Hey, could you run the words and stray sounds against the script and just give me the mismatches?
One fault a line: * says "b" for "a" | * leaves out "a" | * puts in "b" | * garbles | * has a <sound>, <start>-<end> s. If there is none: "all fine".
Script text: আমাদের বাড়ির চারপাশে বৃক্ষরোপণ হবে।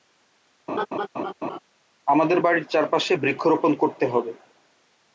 * has a laugh, 0.7-1.6 s
* puts in "করতে"